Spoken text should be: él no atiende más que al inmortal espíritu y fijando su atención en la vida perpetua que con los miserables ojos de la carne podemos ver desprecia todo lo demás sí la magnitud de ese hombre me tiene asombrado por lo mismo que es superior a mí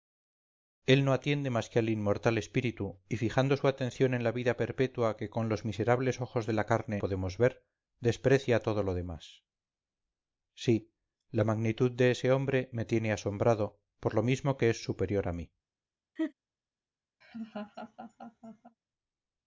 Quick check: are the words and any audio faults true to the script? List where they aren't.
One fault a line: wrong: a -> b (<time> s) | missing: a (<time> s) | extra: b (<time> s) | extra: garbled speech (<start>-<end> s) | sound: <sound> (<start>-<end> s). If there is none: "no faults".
sound: laugh (16.2-16.3 s)
sound: laugh (17.2-18.8 s)